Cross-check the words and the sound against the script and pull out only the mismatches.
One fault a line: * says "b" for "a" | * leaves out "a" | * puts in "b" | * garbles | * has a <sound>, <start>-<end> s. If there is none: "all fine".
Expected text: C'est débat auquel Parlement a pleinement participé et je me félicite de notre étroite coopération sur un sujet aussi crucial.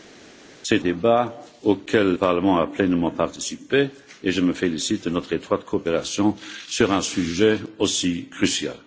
all fine